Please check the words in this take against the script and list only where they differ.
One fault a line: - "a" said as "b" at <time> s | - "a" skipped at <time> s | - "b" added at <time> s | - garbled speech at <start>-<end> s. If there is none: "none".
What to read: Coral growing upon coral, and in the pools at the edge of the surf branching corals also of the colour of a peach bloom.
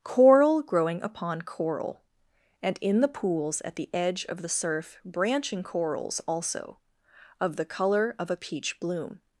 none